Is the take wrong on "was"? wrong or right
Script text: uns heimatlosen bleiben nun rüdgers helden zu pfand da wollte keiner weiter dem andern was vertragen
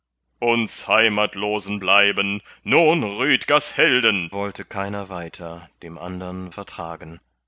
wrong